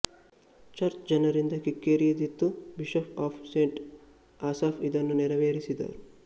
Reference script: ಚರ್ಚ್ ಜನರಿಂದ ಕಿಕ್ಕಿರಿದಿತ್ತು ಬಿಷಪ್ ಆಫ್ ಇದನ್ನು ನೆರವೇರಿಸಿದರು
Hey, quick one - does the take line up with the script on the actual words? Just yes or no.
no